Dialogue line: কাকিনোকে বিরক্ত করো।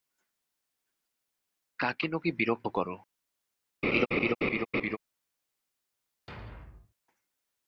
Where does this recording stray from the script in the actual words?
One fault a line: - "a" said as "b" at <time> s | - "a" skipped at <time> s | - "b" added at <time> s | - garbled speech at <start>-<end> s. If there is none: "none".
none